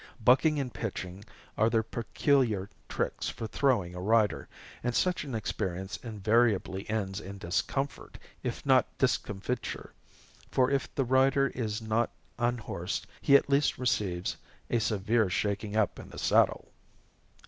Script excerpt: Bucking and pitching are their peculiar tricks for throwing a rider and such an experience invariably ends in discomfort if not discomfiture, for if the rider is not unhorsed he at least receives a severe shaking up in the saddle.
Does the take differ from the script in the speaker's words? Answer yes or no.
no